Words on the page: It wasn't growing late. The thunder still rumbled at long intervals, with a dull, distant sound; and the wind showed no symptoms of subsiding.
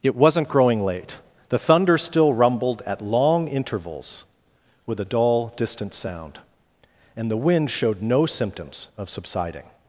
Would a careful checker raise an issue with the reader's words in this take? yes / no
no